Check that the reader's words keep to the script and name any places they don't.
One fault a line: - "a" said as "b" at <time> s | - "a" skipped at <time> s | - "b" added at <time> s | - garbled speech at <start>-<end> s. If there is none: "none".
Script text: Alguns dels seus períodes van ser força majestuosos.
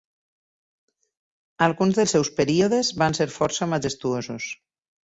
none